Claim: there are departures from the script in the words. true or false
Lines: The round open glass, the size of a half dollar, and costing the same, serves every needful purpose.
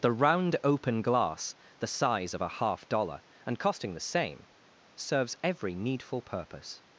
false